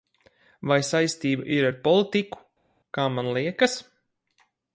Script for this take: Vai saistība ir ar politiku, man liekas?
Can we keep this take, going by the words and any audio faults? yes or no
no